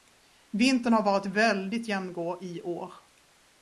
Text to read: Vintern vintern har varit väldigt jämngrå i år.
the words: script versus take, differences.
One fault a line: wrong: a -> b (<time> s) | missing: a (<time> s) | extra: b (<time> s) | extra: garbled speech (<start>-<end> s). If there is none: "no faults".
missing: vintern (0.9 s)